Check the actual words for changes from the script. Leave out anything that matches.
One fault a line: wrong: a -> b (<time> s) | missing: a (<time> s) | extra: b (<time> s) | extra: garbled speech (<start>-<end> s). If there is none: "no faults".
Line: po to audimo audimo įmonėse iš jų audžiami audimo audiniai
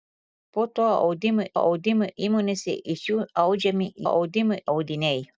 no faults